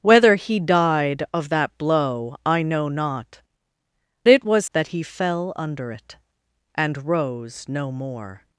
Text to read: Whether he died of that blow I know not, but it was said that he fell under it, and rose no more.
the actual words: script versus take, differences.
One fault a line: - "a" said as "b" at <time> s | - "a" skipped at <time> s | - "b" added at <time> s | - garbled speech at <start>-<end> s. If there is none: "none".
- "but" skipped at 3.4 s
- "said" skipped at 4.6 s